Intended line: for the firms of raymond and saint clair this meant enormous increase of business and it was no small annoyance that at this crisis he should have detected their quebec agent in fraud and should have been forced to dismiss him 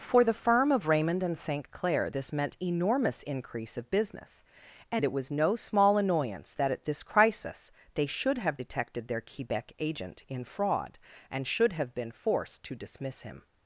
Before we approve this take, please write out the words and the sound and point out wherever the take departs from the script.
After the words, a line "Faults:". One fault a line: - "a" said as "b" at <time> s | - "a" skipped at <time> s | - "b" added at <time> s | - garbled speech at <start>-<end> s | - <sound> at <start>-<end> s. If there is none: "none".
for the firm of raymond and saint clair this meant enormous increase of business and it was no small annoyance that at this crisis they should have detected their quebec agent in fraud and should have been forced to dismiss him
Faults:
- "firms" said as "firm" at 0.3 s
- "he" said as "they" at 7.9 s